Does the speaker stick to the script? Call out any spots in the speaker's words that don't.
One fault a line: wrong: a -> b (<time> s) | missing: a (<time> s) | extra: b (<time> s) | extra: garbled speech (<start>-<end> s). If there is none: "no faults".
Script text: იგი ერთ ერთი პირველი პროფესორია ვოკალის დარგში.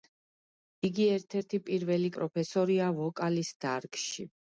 no faults